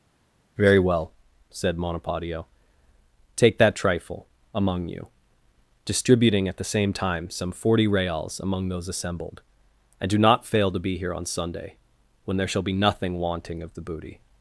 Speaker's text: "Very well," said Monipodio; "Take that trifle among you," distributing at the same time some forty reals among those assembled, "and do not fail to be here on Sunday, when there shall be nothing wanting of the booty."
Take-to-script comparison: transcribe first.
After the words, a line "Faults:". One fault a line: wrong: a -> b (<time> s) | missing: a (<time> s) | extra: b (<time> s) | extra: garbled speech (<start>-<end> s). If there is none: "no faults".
"Very well," said Monipodio; "Take that trifle among you," distributing at the same time some forty reals among those assembled, "and do not fail to be here on Sunday, when there shall be nothing wanting of the booty."
Faults:
no faults